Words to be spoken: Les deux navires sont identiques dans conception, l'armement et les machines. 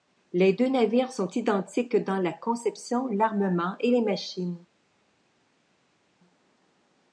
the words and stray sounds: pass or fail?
fail